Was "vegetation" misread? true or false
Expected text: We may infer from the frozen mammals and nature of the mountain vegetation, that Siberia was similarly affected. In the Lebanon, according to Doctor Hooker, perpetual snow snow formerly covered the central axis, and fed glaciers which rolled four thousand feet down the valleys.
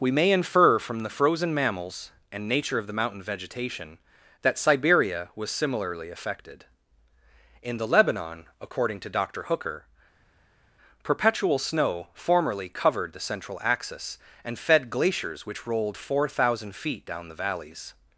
false